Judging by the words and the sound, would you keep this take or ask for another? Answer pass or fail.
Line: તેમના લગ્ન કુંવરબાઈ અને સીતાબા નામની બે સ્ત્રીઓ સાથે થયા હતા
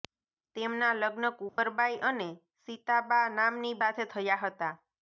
fail